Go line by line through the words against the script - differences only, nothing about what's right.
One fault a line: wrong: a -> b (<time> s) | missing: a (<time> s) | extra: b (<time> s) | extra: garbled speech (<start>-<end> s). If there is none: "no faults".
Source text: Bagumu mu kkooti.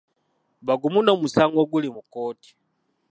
extra: n'omusango oguli (1.0 s)